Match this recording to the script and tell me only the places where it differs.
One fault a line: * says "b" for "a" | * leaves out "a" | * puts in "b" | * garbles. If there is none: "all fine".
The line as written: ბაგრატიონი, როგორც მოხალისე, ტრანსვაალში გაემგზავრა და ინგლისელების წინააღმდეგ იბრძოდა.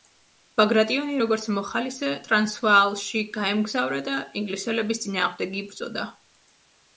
all fine